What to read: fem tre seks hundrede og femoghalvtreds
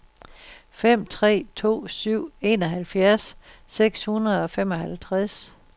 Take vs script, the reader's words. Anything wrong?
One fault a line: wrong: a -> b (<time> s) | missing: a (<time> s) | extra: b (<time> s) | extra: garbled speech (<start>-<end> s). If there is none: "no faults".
extra: to syv enoghalvfjerds (1.6 s)